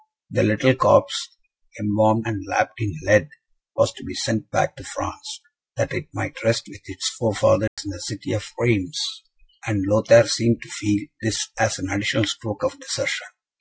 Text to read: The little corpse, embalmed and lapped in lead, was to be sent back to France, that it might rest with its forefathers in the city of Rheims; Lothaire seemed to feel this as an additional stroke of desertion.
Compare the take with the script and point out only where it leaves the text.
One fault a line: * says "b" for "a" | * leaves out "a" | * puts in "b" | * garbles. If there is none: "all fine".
* puts in "and"